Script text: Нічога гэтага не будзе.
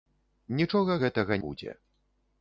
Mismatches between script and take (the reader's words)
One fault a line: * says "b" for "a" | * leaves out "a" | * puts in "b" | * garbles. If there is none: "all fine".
* leaves out "не"